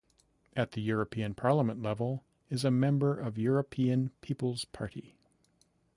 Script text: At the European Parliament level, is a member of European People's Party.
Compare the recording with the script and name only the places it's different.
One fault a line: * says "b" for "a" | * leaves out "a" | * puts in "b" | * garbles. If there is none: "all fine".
all fine